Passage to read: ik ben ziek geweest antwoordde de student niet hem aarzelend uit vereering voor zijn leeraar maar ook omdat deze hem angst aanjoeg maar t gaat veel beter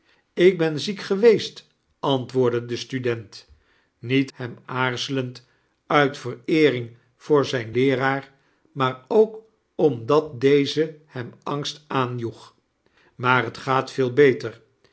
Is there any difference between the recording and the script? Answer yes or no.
no